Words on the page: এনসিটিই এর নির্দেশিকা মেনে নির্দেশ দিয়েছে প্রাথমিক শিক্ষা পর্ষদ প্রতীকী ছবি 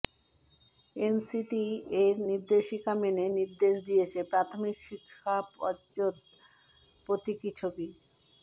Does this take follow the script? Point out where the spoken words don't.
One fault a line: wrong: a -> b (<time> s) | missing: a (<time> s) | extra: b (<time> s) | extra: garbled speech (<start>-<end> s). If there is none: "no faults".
no faults